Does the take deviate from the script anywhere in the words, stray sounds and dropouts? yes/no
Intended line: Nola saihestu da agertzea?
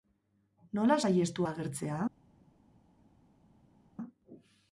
no